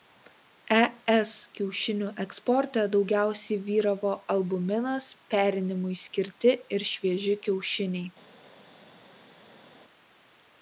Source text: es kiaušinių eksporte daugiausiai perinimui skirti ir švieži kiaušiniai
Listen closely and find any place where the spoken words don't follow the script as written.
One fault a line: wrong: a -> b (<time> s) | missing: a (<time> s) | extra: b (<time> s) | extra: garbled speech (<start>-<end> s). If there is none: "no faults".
extra: vyravo albuminas (3.7 s)